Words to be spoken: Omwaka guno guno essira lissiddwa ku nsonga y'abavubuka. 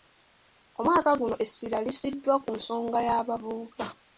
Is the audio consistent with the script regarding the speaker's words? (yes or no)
no